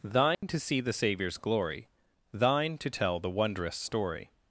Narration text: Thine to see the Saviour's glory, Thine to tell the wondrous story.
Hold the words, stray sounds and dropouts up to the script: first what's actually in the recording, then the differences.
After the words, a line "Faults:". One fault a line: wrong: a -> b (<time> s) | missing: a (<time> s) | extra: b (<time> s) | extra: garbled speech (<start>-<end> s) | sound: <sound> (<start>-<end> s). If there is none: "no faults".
Thine to see the Saviour's glory, Thine to tell the wondrous story.
Faults:
sound: dropout (0.3-0.4 s)